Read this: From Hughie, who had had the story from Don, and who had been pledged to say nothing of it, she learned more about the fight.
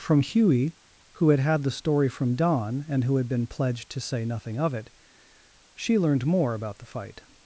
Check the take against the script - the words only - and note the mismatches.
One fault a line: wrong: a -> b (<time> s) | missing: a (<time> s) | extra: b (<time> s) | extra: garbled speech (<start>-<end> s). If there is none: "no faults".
no faults